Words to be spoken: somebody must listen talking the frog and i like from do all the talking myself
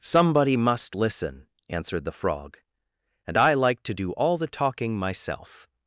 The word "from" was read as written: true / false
false